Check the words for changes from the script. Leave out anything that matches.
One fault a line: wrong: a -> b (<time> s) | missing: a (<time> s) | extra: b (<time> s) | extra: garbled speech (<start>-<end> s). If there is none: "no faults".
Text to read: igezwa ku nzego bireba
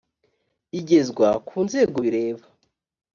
no faults